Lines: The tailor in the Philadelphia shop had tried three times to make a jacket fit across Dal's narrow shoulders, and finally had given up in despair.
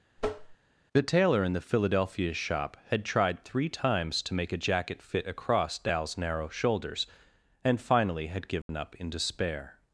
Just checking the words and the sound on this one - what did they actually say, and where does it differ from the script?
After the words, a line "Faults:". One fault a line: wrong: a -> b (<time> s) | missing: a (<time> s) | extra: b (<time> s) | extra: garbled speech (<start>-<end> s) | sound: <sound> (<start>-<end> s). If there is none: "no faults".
The tailor in the Philadelphia shop had tried three times to make a jacket fit across Dal's narrow shoulders, and finally had given up in despair.
Faults:
sound: tap (0.2-0.6 s)
sound: dropout (8.6-8.7 s)